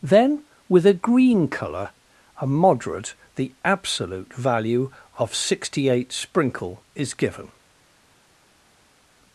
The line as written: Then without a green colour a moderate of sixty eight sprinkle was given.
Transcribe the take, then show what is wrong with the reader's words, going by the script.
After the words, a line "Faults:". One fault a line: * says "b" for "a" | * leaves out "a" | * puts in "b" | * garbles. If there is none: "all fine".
Then with a green colour a moderate the absolute value of sixty eight sprinkle is given.
Faults:
* says "with" for "without"
* puts in "the absolute value"
* says "is" for "was"